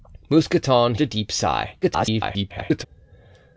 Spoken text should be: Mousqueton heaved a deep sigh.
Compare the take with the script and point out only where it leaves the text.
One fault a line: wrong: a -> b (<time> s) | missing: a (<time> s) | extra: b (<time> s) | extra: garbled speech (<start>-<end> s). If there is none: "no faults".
missing: heaved (0.9 s)
extra: garbled speech (1.8-2.9 s)